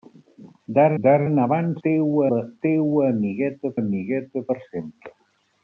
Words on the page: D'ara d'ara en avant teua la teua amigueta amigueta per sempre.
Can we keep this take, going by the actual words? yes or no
yes